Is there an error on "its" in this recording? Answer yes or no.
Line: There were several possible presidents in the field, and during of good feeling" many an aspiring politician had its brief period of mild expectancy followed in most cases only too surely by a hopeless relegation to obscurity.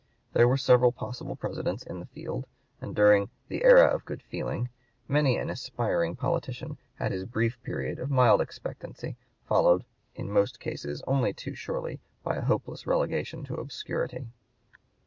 yes